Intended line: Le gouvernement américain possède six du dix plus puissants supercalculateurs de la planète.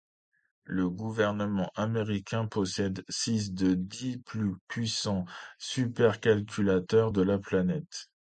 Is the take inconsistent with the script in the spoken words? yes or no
yes